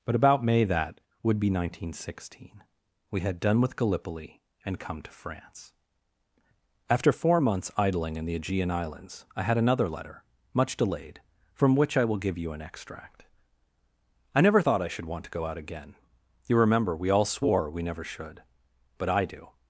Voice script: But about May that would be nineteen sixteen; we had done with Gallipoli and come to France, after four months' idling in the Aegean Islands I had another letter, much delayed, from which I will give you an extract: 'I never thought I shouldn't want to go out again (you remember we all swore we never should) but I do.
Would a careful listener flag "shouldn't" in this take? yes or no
yes